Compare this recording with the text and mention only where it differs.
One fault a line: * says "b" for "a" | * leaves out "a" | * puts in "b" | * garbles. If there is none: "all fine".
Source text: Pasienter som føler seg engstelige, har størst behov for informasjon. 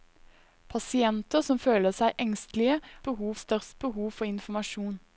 * says "behov" for "har"